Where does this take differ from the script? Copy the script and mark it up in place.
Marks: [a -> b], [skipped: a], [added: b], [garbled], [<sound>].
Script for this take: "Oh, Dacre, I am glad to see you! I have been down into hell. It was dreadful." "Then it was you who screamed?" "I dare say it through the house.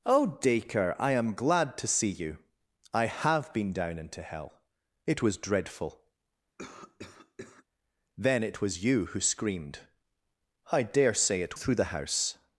"Oh, Dacre, I am glad to see you! I have been down into hell. It was dreadful." [cough] "Then it was you who screamed?" "I dare say it through the house.